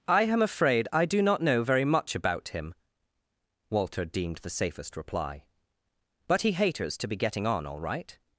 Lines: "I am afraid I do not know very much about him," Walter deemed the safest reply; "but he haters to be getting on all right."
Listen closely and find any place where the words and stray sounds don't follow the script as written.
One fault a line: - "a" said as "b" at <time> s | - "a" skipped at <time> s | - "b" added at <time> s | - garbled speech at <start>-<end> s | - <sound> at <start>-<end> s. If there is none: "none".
none